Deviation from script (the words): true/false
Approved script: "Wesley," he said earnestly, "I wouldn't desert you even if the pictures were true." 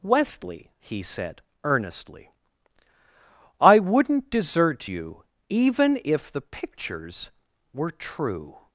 false